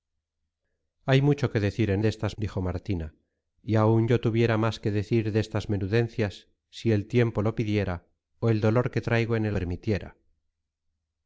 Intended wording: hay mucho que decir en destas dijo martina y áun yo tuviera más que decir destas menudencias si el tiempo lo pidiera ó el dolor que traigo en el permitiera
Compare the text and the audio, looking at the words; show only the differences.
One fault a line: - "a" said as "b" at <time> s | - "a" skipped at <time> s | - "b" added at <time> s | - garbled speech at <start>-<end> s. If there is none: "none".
none